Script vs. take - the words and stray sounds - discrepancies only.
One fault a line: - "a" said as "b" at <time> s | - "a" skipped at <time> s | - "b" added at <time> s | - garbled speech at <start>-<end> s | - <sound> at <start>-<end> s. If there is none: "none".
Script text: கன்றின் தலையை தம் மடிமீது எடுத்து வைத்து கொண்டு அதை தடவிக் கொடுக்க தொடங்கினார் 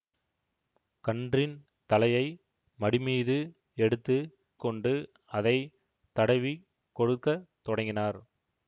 - "தம்" skipped at 2.2 s
- "வைத்து" skipped at 4.2 s